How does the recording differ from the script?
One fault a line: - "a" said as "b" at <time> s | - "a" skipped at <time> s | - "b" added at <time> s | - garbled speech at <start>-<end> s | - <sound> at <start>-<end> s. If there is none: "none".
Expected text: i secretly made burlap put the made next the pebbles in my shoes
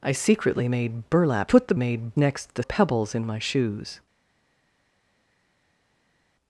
none